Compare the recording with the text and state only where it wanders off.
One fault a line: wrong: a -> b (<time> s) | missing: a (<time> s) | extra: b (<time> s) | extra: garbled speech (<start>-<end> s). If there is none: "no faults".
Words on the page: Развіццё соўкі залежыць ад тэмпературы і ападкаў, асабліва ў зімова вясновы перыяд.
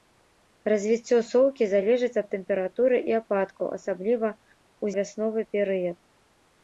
missing: зімова (4.8 s)